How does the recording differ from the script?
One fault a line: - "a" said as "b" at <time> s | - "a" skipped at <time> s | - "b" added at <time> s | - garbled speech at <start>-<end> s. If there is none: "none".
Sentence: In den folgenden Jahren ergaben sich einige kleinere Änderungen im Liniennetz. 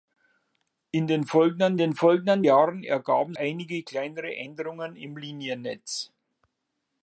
- "den folgenden" added at 1.7 s
- "sich" skipped at 3.4 s